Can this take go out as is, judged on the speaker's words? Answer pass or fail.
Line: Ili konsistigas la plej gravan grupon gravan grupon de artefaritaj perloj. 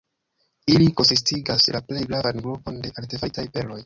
fail